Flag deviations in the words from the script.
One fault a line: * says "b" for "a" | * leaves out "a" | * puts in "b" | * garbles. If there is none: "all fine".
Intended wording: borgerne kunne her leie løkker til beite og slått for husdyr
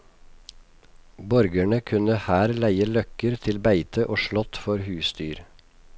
all fine